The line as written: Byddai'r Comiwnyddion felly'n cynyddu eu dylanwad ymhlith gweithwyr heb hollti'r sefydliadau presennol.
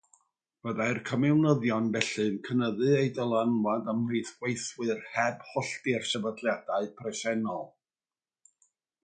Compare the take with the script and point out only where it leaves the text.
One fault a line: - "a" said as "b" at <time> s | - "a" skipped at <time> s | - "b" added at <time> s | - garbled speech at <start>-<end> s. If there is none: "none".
none